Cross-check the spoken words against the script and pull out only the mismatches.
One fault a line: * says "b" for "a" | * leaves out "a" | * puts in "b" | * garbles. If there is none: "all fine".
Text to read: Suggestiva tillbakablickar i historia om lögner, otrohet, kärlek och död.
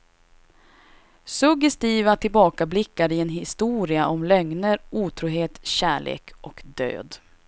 * puts in "en"